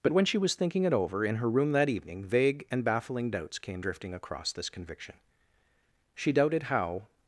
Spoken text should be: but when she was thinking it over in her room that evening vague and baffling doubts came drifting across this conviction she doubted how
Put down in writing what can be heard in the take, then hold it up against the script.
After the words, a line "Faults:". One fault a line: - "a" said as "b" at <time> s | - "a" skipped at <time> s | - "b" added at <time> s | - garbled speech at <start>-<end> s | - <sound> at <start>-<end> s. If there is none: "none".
but when she was thinking it over in her room that evening vague and baffling doubts came drifting across this conviction she doubted how
Faults:
none